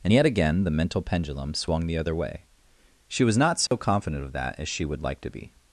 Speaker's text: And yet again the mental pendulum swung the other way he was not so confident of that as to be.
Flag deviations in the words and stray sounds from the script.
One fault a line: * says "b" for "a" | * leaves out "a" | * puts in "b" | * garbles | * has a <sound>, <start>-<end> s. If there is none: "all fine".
* says "she" for "he"
* has a dropout, 3.7-3.7 s
* puts in "she would like"